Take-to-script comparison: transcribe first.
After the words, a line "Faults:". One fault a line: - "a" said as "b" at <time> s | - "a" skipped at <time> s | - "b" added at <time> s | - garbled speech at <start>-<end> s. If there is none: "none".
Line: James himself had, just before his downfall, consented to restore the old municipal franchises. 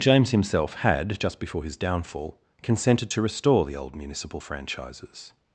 James himself had, just before his downfall, consented to restore the old municipal franchises.
Faults:
none